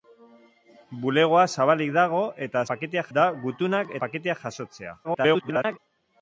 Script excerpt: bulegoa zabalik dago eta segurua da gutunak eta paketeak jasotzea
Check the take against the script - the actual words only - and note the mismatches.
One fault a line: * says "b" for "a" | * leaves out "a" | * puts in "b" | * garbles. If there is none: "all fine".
* says "paketeak" for "segurua"
* leaves out "eta"
* garbles